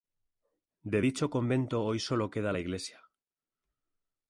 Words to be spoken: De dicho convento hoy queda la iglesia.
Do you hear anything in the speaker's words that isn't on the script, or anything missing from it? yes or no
yes